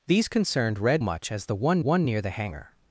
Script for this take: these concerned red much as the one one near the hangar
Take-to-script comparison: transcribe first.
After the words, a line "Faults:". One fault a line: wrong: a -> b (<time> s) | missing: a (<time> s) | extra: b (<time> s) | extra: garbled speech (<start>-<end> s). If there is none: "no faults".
these concerned red much as the one one near the hangar
Faults:
no faults